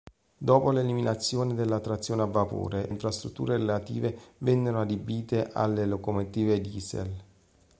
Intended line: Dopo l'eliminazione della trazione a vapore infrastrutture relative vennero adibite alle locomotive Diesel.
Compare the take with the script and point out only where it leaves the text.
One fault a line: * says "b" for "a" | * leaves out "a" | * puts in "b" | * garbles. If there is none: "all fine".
all fine